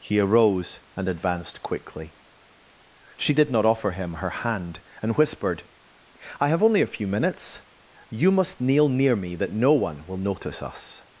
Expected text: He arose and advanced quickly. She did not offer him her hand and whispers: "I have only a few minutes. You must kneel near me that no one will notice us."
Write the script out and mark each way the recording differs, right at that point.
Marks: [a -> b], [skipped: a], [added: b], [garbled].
He arose and advanced quickly. She did not offer him her hand and [whispers: -> whispered] "I have only a few minutes. You must kneel near me that no one will notice us."